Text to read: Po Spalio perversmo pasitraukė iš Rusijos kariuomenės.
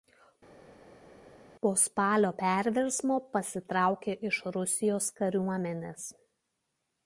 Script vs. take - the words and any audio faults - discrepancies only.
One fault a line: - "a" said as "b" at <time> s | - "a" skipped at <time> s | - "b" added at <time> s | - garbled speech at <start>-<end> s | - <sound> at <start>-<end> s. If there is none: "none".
none